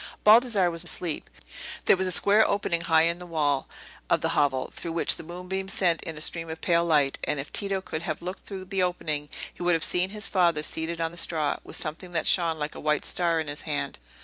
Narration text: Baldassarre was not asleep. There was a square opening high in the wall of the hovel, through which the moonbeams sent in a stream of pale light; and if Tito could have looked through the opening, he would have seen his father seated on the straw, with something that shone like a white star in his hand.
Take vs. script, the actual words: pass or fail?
fail